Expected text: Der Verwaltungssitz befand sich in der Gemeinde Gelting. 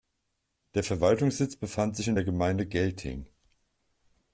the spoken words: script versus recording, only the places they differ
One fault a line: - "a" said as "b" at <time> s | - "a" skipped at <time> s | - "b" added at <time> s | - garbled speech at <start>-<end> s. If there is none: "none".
none